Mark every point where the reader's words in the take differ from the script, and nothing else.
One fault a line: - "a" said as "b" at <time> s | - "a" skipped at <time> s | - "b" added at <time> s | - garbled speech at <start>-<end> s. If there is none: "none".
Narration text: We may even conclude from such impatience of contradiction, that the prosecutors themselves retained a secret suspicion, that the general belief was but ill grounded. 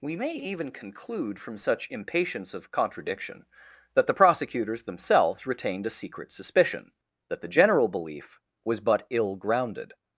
none